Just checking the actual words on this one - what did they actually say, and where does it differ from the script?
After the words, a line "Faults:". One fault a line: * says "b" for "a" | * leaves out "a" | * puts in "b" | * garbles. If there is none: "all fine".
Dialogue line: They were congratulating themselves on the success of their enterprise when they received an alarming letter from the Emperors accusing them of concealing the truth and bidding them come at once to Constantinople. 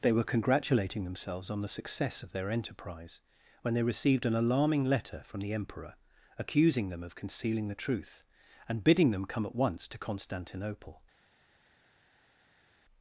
They were congratulating themselves on the success of their enterprise when they received an alarming letter from the Emperor accusing them of concealing the truth and bidding them come at once to Constantinople.
Faults:
* says "Emperor" for "Emperors"